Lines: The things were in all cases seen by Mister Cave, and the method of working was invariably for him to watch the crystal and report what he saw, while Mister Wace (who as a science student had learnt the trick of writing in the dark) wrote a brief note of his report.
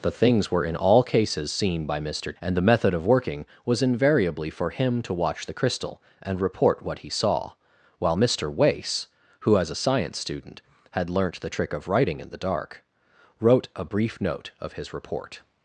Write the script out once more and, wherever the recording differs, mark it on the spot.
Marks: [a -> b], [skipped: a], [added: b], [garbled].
The things were in all cases seen by Mister [skipped: Cave,] and the method of working was invariably for him to watch the crystal and report what he saw, while Mister Wace (who as a science student had learnt the trick of writing in the dark) wrote a brief note of his report.